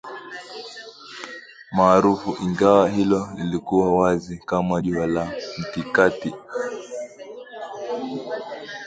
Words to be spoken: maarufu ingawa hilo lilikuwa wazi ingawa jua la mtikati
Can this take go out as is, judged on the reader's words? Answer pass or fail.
fail